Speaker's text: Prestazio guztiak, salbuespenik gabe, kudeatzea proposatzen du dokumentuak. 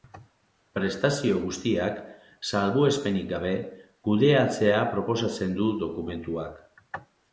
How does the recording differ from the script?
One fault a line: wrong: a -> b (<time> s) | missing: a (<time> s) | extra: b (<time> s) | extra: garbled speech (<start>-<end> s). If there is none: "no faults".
no faults